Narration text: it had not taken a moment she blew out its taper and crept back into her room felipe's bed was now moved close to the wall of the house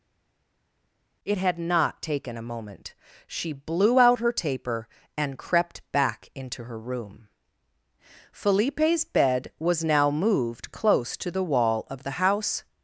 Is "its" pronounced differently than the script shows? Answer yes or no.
yes